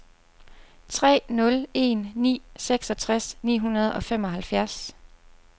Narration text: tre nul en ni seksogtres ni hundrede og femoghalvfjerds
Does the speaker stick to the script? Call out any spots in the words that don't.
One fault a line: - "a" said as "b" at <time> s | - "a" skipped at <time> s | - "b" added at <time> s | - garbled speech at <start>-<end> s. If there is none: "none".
none